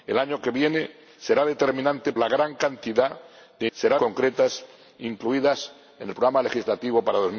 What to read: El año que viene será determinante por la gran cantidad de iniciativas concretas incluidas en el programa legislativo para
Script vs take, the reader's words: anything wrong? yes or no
yes